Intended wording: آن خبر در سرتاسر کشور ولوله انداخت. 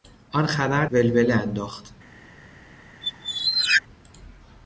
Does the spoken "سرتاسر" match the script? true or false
false